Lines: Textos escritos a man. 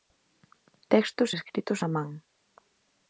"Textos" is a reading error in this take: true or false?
false